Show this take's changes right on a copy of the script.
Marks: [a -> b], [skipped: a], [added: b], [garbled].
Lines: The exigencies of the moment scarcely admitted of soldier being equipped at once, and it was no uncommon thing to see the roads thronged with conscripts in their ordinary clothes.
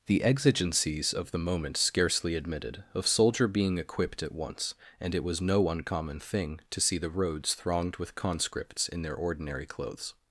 The exigencies of the moment scarcely admitted of soldier being equipped at once, and it was no uncommon thing to see the roads thronged with conscripts in their ordinary clothes.